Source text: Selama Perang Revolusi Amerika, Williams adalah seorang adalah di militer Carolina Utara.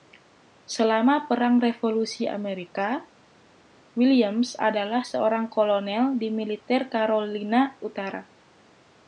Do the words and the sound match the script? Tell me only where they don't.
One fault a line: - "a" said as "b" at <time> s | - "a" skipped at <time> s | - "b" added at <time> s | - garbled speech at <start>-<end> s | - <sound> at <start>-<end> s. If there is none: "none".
- "adalah" said as "kolonel" at 5.5 s